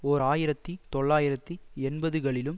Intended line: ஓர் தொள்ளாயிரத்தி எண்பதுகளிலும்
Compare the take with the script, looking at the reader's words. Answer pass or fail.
fail